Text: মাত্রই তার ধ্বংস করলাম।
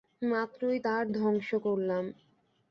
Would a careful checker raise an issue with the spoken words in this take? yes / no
no